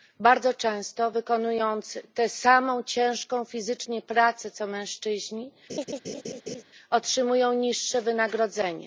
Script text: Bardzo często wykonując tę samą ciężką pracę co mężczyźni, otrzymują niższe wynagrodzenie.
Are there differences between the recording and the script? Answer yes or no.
yes